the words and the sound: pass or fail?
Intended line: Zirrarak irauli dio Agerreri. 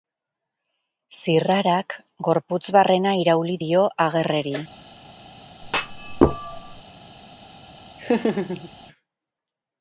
fail